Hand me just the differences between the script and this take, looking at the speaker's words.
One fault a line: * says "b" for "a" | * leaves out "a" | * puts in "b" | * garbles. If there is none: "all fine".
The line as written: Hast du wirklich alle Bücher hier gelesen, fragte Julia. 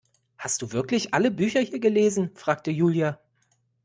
all fine